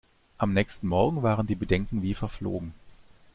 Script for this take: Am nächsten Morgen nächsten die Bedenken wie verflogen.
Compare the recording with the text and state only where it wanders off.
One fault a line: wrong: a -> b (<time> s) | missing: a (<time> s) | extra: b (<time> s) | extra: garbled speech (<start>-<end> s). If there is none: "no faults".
wrong: nächsten -> waren (1.2 s)